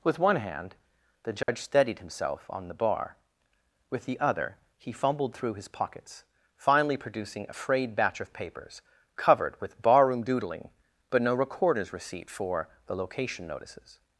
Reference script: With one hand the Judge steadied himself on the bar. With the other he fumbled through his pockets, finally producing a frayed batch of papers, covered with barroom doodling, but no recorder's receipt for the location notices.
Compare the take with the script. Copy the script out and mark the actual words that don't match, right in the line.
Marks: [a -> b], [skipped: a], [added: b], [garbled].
With one hand the Judge steadied himself on the bar. With the other he fumbled through his pockets, finally producing a frayed batch of papers, covered with barroom doodling, but no recorder's receipt for the location notices.